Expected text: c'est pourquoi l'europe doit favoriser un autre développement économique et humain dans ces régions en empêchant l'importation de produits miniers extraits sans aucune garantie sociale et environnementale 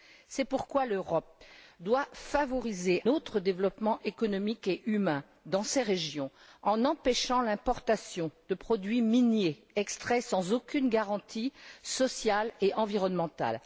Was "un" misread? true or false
true